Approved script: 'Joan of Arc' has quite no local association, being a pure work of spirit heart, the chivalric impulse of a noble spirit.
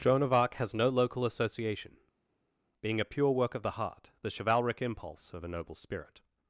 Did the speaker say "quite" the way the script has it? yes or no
no